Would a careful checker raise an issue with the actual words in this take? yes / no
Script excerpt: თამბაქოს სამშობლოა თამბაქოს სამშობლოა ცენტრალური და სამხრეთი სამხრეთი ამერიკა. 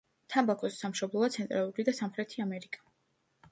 yes